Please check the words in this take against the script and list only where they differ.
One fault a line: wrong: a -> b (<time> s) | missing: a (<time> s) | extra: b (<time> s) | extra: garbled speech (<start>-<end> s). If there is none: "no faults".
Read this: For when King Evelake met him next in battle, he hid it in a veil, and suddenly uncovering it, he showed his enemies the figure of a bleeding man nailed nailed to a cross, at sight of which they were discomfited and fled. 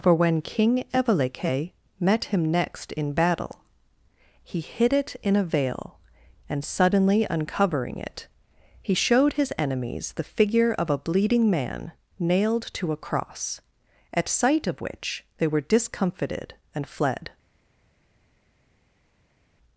missing: nailed (12.7 s)